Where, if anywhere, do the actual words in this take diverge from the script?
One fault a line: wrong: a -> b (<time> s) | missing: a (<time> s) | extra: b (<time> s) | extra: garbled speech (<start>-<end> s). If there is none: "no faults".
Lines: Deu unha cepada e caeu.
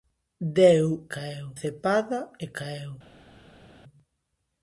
wrong: unha -> caeu (1.1 s)